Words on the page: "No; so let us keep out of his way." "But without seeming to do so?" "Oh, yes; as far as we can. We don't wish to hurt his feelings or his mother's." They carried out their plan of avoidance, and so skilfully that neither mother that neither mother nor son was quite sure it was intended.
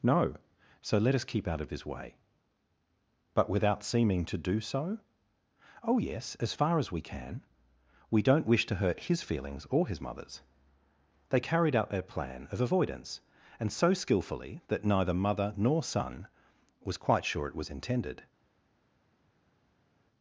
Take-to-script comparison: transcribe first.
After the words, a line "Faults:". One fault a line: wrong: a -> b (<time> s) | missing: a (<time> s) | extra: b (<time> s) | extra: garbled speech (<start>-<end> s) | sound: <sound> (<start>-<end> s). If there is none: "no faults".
"No; so let us keep out of his way." "But without seeming to do so?" "Oh, yes; as far as we can. We don't wish to hurt his feelings or his mother's." They carried out their plan of avoidance, and so skilfully that neither mother nor son was quite sure it was intended.
Faults:
missing: that neither mother (15.5 s)